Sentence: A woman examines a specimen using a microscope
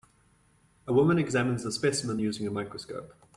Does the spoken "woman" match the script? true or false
true